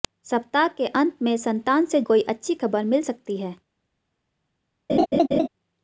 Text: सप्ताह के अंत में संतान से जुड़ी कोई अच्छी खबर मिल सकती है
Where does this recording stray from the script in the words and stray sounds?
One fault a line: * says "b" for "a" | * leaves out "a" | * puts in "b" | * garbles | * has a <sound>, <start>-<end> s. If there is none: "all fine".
* leaves out "जुड़ी"
* has a laugh, 4.9-5.5 s